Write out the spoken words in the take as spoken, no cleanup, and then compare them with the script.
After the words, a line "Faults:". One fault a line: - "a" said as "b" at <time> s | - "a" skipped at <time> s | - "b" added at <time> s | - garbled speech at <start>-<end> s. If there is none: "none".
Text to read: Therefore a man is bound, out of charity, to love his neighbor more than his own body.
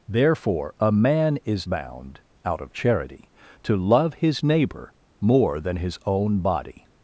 Therefore a man is bound, out of charity, to love his neighbor more than his own body.
Faults:
none